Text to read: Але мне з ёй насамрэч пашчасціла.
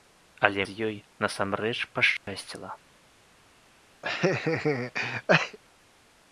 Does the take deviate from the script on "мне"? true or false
true